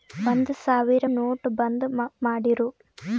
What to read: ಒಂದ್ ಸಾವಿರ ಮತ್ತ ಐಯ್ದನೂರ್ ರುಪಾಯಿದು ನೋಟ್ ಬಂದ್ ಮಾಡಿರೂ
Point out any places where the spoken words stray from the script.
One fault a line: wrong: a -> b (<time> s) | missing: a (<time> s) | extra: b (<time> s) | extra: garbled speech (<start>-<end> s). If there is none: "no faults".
missing: ಮತ್ತ ಐಯ್ದನೂರ್ ರುಪಾಯಿದು (1.1 s)